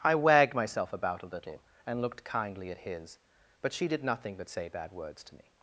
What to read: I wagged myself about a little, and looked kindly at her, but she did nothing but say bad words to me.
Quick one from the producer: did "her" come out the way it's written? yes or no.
no